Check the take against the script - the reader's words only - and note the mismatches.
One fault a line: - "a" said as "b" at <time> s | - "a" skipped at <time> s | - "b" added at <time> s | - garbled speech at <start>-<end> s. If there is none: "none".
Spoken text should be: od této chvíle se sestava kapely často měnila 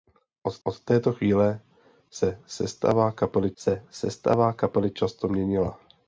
- "od" added at 0.6 s
- "se sestava kapely" added at 3.6 s